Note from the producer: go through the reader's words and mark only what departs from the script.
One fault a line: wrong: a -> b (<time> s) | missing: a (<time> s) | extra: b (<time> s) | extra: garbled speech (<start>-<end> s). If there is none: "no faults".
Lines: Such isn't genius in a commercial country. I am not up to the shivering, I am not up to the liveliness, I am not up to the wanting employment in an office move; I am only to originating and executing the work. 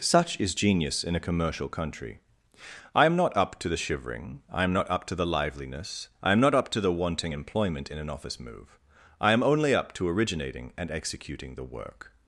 wrong: isn't -> is (0.4 s)
extra: up (9.7 s)